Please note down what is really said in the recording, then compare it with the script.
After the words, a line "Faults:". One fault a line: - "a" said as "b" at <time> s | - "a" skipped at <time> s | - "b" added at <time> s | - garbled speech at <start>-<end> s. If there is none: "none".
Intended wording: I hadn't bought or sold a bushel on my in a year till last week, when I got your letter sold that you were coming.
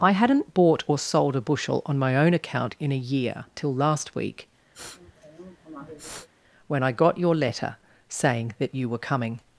I hadn't bought or sold a bushel on my own account in a year till last week, when I got your letter saying that you were coming.
Faults:
- "own account" added at 2.2 s
- "sold" said as "saying" at 8.1 s